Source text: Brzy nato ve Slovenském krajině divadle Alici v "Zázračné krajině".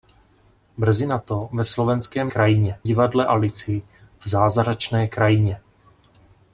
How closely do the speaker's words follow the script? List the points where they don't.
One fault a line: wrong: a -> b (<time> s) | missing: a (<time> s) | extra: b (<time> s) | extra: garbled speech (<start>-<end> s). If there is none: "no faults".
no faults